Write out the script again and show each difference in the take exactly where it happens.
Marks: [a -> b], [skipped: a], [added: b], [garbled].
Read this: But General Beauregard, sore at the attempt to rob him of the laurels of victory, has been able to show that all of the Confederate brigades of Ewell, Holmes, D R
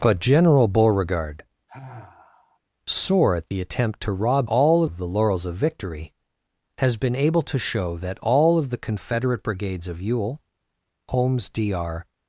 But General Beauregard, sore at the attempt to rob [him -> all] of the laurels of victory, has been able to show that all of the Confederate brigades of Ewell, Holmes, D R